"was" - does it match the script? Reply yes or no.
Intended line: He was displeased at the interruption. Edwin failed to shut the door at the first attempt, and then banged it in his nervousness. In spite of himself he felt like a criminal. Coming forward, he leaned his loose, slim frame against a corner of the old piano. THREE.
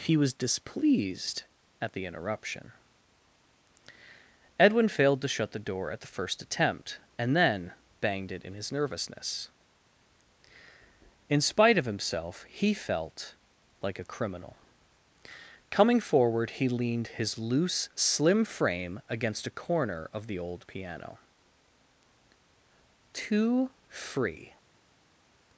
yes